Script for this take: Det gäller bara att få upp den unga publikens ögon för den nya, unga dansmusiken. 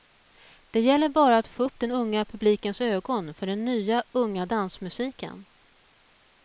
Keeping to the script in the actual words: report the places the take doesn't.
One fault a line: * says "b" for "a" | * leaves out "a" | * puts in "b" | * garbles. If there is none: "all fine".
all fine